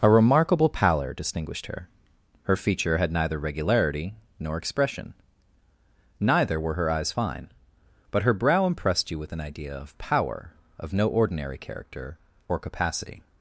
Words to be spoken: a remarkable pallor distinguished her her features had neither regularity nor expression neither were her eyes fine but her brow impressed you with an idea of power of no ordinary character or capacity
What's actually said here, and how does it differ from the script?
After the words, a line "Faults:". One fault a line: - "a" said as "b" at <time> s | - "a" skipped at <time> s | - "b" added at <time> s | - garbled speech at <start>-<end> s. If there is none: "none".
a remarkable pallor distinguished her her feature had neither regularity nor expression neither were her eyes fine but her brow impressed you with an idea of power of no ordinary character or capacity
Faults:
- "features" said as "feature" at 2.5 s